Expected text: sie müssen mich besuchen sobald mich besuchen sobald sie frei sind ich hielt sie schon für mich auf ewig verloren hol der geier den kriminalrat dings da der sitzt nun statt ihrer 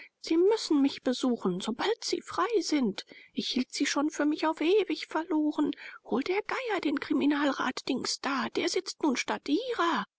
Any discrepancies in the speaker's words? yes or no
yes